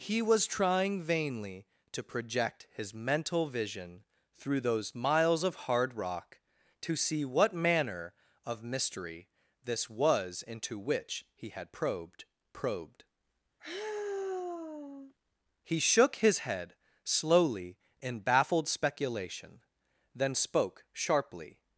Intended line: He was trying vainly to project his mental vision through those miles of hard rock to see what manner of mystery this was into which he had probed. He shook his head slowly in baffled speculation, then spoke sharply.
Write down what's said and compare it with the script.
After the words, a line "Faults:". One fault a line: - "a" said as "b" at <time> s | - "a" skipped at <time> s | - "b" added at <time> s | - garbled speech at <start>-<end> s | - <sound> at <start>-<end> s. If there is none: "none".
He was trying vainly to project his mental vision through those miles of hard rock to see what manner of mystery this was into which he had probed probed. He shook his head slowly in baffled speculation, then spoke sharply.
Faults:
- "probed" added at 12.5 s
- sigh at 13.6-15.1 s